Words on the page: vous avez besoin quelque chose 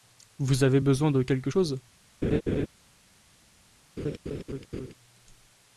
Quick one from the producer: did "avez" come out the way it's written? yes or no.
yes